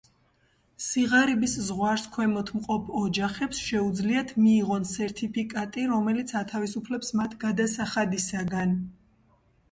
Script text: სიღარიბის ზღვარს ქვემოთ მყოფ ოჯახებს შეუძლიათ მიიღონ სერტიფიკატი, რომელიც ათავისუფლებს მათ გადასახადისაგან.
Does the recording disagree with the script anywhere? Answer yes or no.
no